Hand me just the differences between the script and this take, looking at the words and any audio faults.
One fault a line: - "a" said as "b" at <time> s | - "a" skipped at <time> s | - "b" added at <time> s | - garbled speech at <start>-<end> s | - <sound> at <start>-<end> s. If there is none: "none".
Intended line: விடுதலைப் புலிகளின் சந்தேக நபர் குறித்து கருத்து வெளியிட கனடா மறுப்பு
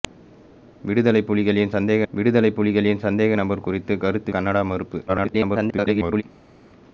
- "விடுதலைப் புலிகளின் சந்தேக" added at 2.1 s
- "வெளியிட" skipped at 4.3 s
- garbled speech at 5.1-6.2 s